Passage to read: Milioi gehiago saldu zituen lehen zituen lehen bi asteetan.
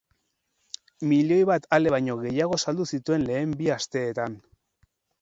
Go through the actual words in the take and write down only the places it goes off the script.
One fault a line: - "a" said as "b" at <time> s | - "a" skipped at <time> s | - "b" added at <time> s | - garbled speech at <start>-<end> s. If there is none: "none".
- "bat ale baino" added at 1.5 s
- "zituen lehen" skipped at 3.6 s